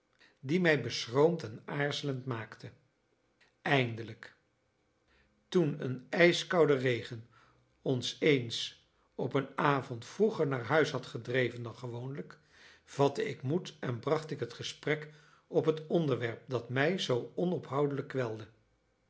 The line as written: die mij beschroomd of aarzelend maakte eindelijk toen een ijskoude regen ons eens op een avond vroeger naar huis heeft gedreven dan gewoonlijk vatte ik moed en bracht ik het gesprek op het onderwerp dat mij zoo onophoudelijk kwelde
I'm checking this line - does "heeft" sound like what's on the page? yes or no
no